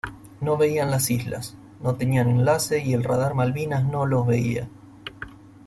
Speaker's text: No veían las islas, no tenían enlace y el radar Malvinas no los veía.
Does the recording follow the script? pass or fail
pass